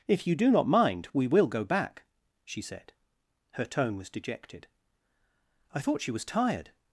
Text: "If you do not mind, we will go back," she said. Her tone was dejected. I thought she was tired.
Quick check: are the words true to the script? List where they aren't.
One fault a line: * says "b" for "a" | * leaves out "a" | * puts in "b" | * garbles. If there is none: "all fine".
all fine